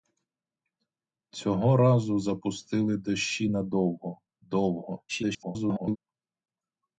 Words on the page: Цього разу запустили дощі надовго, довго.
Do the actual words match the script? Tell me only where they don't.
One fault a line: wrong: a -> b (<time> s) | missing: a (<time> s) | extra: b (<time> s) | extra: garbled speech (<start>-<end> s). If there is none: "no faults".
extra: garbled speech (5.1-6.0 s)